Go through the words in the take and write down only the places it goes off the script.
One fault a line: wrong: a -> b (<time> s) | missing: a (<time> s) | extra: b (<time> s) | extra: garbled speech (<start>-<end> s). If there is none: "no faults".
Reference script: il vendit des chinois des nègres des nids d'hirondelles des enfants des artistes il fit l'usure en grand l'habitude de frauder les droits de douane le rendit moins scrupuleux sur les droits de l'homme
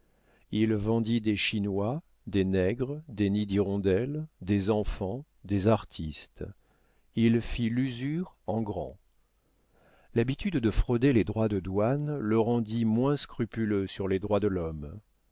no faults